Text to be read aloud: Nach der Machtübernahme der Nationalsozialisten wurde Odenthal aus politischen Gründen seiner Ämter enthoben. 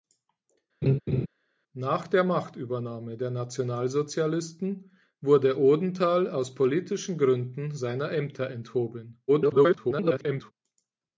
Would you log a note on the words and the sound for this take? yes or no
yes